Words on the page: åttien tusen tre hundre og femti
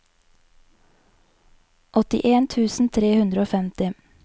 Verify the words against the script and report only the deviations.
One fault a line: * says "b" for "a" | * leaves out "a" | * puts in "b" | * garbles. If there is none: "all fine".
all fine